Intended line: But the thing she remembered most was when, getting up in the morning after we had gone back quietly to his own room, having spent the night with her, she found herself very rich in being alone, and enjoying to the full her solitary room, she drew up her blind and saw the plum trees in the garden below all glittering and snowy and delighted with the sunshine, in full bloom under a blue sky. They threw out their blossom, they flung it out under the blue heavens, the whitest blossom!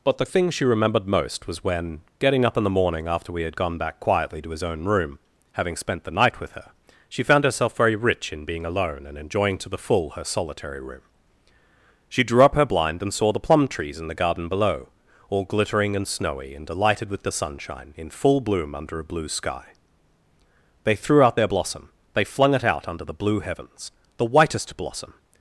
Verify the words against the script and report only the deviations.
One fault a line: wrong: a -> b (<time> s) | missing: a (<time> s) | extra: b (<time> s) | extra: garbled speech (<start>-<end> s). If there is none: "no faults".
no faults